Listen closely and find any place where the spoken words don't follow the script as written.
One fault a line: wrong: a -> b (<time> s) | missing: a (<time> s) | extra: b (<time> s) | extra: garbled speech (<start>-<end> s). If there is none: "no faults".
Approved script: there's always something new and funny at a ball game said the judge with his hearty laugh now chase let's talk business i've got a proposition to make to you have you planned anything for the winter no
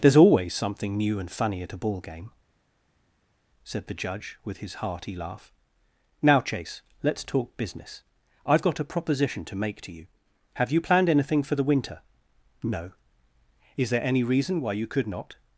extra: is there any reason why you could not (13.8 s)